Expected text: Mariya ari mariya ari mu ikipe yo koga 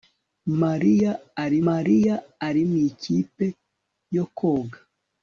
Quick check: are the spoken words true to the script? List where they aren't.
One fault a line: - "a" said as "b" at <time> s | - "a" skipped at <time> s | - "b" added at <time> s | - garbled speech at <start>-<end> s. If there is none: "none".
none